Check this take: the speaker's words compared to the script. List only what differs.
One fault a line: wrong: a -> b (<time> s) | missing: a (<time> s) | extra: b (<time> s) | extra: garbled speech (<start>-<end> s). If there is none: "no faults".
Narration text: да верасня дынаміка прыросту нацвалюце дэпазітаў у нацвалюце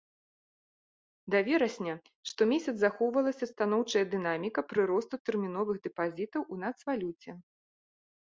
extra: штомесяц захоўвалася станоўчая (2.3 s)
wrong: нацвалюце -> тэрміновых (5.3 s)